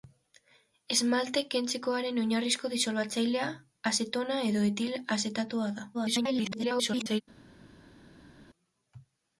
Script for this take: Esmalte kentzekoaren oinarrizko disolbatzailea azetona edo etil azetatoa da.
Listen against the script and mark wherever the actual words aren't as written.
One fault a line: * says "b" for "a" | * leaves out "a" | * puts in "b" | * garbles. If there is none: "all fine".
* garbles